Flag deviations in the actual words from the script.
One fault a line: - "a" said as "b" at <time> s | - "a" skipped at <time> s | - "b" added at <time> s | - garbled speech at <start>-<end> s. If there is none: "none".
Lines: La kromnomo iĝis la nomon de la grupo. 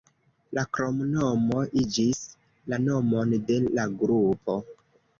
none